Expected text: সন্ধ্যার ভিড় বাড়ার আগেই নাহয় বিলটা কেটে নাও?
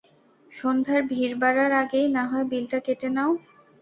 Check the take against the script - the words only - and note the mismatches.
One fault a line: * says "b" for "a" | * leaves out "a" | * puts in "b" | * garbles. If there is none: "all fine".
all fine